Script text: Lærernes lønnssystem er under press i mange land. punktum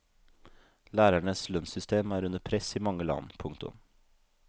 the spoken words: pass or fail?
pass